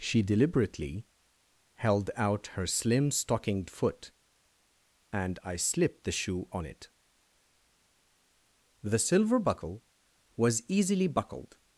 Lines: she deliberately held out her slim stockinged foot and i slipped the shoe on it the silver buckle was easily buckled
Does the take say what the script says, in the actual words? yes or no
yes